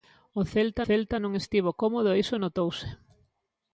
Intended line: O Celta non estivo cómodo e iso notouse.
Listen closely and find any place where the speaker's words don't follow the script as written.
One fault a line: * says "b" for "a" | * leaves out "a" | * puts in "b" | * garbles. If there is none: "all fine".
* puts in "Celta"